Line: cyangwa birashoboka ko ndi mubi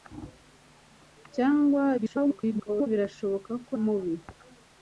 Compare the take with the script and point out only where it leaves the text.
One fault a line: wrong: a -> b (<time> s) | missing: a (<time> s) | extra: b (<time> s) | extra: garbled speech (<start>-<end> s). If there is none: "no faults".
extra: garbled speech (2.0-2.9 s)
missing: ndi (3.7 s)